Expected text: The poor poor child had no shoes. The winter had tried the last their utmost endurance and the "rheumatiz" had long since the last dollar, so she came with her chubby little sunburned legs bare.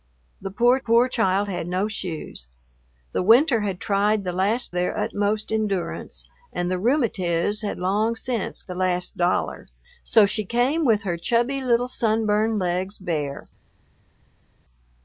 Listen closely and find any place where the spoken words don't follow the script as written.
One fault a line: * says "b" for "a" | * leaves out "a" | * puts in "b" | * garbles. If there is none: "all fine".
all fine